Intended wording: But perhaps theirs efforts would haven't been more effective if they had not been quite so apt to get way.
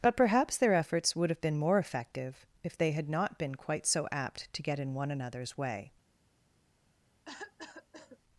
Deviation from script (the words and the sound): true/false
true